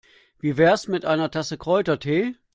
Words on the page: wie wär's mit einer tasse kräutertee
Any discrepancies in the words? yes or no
no